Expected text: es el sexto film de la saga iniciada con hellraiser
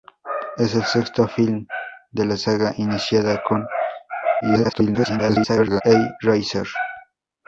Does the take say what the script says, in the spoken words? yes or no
no